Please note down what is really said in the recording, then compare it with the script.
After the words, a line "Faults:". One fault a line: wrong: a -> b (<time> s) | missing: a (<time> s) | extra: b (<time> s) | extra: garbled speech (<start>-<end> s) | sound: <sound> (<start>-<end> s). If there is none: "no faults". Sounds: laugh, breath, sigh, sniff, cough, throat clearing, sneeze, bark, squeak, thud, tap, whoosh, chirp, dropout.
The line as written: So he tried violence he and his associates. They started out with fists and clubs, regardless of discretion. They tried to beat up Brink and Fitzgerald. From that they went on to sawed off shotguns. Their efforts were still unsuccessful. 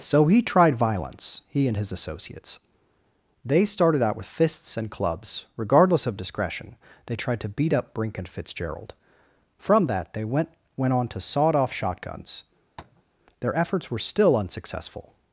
So he tried violence he and his associates. They started out with fists and clubs, regardless of discretion. They tried to beat up Brink and Fitzgerald. From that they went went on to sawed off shotguns. Their efforts were still unsuccessful.
Faults:
extra: went (10.8 s)
sound: tap (12.8-13.0 s)